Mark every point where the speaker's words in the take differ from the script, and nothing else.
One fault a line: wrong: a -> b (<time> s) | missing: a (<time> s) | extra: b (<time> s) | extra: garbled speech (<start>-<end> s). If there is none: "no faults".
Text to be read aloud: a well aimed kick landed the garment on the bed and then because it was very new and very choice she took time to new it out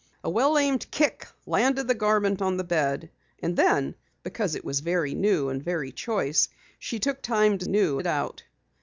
no faults